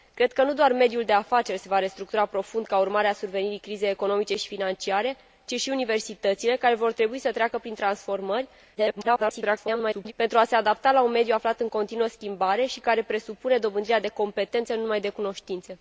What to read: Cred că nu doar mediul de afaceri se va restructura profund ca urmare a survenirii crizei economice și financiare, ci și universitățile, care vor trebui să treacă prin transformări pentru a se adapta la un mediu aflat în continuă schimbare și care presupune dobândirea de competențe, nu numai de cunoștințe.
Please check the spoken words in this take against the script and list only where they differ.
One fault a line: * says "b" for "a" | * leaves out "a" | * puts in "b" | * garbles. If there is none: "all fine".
* garbles